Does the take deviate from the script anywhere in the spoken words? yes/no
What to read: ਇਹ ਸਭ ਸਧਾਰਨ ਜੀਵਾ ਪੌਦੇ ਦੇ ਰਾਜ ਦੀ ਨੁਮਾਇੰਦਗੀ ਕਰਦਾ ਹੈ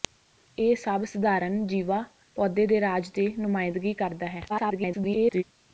yes